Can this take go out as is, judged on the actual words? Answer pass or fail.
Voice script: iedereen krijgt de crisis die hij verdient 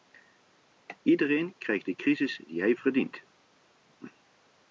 pass